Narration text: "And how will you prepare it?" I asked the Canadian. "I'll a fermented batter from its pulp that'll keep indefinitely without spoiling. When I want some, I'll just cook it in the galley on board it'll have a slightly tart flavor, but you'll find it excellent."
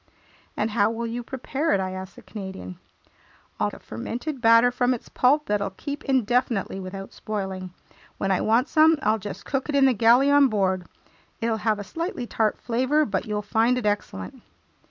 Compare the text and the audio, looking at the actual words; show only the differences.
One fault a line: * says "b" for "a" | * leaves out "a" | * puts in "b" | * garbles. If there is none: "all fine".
all fine